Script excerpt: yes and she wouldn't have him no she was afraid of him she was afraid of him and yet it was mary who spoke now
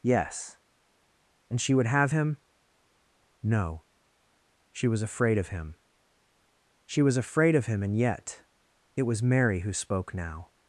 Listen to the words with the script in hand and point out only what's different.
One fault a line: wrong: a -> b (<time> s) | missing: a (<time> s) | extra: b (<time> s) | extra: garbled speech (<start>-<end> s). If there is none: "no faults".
wrong: wouldn't -> would (1.7 s)